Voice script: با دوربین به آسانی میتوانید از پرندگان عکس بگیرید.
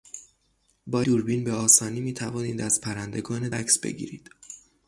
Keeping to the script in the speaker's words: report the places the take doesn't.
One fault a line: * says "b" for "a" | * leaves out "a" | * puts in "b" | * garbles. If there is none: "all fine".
all fine